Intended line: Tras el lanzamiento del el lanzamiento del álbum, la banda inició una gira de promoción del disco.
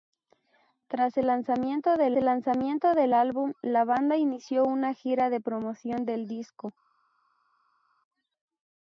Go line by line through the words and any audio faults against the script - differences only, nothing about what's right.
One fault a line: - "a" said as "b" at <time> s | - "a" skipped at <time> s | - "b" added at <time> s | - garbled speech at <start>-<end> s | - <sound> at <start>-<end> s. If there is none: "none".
none